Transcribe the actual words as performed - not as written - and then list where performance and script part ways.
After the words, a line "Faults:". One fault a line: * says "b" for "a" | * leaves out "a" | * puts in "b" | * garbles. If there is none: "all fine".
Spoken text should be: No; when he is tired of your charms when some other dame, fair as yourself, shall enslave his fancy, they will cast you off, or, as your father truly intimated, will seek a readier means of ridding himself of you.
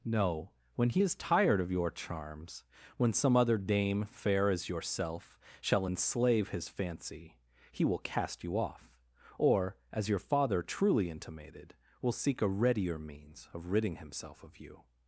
No; when he is tired of your charms when some other dame, fair as yourself, shall enslave his fancy, he will cast you off, or, as your father truly intimated, will seek a readier means of ridding himself of you.
Faults:
* says "he" for "they"